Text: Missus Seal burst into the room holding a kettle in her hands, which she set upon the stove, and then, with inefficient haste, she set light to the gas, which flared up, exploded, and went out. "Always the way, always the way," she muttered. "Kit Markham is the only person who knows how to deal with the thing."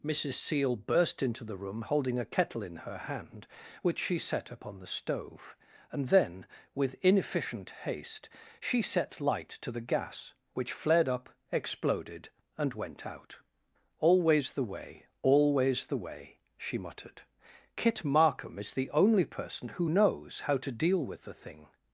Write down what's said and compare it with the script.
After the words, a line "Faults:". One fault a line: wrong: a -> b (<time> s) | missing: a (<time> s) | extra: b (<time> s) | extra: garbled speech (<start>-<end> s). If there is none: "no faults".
Missus Seal burst into the room holding a kettle in her hand, which she set upon the stove, and then, with inefficient haste, she set light to the gas, which flared up, exploded, and went out. "Always the way, always the way," she muttered. "Kit Markham is the only person who knows how to deal with the thing."
Faults:
wrong: hands -> hand (3.0 s)